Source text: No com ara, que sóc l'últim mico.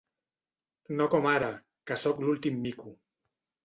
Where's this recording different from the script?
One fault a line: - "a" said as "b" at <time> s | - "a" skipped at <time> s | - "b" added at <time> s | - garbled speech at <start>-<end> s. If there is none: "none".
none